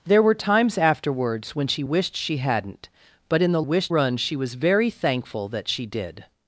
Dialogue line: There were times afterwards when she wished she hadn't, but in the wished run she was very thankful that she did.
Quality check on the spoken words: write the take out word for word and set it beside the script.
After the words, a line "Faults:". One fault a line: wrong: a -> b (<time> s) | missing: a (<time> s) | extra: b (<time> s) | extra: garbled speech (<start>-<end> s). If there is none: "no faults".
There were times afterwards when she wished she hadn't, but in the wished run she was very thankful that she did.
Faults:
no faults